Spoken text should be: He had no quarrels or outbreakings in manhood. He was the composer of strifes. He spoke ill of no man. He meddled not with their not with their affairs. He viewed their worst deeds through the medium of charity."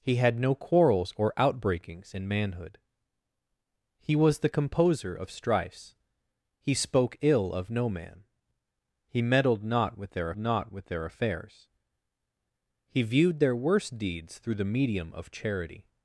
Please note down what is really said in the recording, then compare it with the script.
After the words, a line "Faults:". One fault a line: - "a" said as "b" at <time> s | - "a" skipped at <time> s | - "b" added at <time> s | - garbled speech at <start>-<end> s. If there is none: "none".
He had no quarrels or outbreakings in manhood. He was the composer of strifes. He spoke ill of no man. He meddled not with their not with their affairs. He viewed their worst deeds through the medium of charity."
Faults:
none